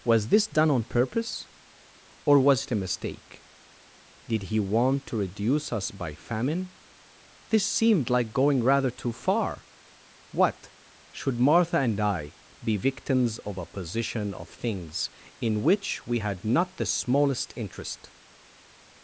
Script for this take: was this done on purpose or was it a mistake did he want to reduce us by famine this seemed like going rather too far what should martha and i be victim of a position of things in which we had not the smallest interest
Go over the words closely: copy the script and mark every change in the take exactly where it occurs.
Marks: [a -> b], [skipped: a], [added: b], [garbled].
was this done on purpose or was it a mistake did he want to reduce us by famine this seemed like going rather too far what should martha and i be [victim -> victims] of a position of things in which we had not the smallest interest